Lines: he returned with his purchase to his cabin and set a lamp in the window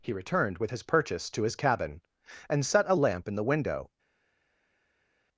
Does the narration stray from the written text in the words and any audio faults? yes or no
no